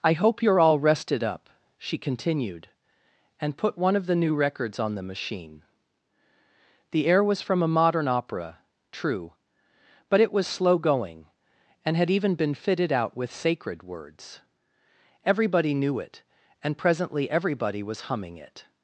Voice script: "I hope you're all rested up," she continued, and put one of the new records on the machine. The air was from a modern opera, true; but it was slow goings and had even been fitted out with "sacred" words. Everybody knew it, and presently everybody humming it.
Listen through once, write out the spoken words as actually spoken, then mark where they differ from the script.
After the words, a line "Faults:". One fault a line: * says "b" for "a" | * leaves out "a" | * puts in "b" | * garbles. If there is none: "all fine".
"I hope you're all rested up," she continued, and put one of the new records on the machine. The air was from a modern opera, true; but it was slow going and had even been fitted out with "sacred" words. Everybody knew it, and presently everybody was humming it.
Faults:
* says "going" for "goings"
* puts in "was"